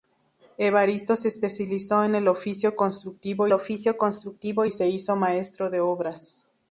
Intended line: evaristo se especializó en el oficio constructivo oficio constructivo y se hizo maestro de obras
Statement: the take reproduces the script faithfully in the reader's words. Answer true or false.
true